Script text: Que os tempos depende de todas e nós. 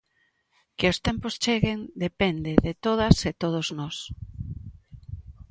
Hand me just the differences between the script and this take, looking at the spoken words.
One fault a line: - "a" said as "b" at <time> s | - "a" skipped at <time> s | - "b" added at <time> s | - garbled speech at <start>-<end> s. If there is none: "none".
- "cheguen" added at 1.4 s
- "todos" added at 3.4 s